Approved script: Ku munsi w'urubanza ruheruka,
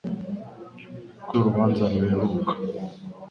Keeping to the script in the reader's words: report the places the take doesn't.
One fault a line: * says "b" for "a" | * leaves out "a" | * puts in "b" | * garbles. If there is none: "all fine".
* leaves out "munsi"